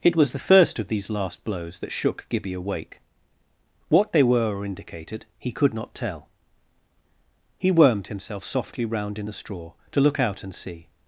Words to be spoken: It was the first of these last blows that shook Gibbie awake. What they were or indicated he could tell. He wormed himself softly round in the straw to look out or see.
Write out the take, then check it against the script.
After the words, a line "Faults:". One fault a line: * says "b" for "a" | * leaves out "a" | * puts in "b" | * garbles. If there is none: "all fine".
It was the first of these last blows that shook Gibbie awake. What they were or indicated he could not tell. He wormed himself softly round in the straw to look out and see.
Faults:
* puts in "not"
* says "and" for "or"